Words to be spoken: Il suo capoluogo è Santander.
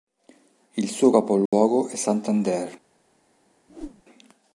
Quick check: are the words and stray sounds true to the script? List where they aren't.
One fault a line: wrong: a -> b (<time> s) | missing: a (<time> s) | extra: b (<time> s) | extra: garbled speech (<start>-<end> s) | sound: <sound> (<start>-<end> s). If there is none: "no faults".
sound: dropout (1.5-1.5 s)
sound: whoosh (3.7-4.0 s)